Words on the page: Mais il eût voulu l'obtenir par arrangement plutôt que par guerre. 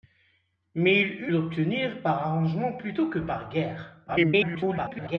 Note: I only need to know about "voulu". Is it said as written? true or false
false